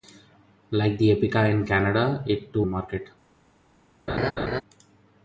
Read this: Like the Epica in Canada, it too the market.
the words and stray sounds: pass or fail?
fail